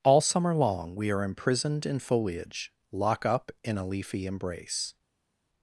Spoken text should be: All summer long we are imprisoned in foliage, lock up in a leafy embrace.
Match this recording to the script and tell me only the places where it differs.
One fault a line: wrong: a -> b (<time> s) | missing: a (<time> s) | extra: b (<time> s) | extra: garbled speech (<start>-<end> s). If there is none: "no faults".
no faults